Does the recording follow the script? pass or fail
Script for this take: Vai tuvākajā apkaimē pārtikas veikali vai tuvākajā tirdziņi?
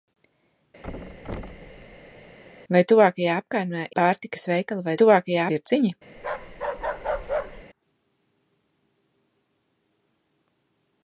pass